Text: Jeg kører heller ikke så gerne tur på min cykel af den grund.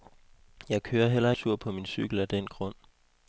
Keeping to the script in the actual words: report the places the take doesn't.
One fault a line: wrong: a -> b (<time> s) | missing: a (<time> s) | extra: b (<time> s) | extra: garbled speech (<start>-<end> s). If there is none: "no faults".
missing: ikke så gerne (1.3 s)